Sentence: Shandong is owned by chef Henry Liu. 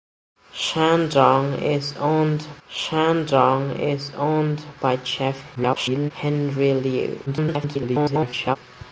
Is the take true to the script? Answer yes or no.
no